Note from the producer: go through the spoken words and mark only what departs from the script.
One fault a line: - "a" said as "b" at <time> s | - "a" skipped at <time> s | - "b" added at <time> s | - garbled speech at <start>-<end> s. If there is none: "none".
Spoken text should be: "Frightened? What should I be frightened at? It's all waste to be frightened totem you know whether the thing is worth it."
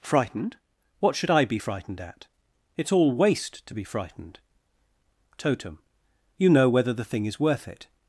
none